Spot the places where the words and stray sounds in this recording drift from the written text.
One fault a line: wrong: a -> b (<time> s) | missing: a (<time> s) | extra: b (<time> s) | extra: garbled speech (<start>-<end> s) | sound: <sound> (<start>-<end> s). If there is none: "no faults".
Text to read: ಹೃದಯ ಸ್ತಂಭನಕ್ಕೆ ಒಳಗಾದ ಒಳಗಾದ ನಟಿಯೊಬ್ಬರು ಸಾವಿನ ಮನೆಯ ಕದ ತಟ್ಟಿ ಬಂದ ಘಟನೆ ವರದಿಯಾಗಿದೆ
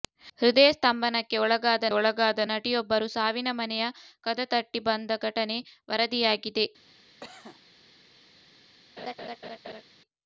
sound: cough (7.2-7.6 s)
sound: laugh (9.0-9.8 s)